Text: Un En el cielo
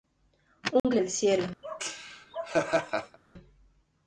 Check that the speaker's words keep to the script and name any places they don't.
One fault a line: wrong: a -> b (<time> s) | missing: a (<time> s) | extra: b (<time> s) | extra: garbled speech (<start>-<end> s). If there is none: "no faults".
no faults